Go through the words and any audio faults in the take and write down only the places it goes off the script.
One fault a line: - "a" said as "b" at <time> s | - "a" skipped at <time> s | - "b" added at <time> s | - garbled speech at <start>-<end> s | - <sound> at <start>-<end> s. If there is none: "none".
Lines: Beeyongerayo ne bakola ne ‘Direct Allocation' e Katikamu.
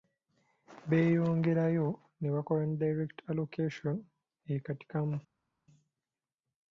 none